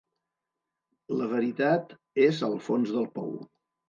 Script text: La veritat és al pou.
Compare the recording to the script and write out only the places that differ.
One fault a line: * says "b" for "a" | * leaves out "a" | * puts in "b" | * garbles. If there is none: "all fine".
* puts in "fons del"